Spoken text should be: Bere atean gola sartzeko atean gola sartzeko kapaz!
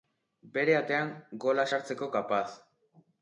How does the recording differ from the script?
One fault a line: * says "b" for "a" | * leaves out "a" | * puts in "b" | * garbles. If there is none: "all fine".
* leaves out "atean gola sartzeko"